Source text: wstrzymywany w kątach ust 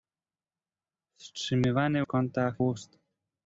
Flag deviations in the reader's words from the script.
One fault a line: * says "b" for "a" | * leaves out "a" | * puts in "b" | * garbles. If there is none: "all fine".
all fine